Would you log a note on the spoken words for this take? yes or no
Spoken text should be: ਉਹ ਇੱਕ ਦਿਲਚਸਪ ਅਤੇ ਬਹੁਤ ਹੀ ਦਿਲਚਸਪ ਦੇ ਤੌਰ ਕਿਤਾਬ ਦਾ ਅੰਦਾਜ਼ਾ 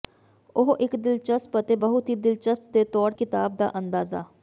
no